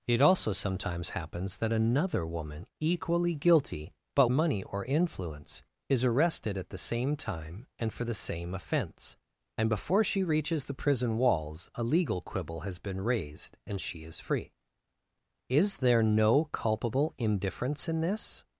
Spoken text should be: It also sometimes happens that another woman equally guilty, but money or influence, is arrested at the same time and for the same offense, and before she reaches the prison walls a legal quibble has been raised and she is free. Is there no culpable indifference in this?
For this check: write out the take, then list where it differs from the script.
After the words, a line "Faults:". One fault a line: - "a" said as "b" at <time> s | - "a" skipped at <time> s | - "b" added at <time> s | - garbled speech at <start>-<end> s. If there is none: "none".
It also sometimes happens that another woman equally guilty, but money or influence, is arrested at the same time and for the same offense, and before she reaches the prison walls a legal quibble has been raised and she is free. Is there no culpable indifference in this?
Faults:
none